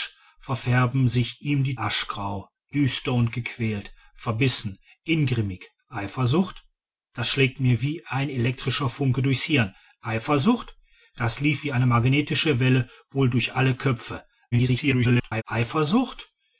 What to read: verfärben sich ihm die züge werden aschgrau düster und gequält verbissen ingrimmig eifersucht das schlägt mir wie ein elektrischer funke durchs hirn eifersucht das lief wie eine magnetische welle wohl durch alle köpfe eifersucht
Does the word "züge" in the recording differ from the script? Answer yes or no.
yes